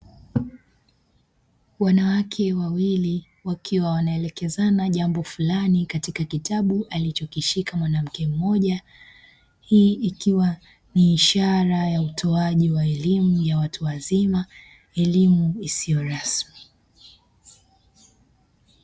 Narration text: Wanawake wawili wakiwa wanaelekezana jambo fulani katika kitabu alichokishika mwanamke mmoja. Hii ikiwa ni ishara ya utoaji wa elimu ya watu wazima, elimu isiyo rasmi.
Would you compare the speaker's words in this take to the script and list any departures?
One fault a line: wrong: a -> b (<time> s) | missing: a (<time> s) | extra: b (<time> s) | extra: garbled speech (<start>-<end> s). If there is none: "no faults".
no faults